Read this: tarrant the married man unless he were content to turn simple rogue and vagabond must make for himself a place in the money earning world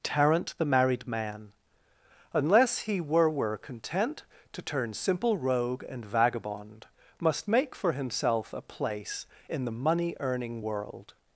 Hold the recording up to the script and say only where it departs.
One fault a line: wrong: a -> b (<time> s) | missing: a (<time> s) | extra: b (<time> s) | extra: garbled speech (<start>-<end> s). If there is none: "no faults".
extra: were (3.3 s)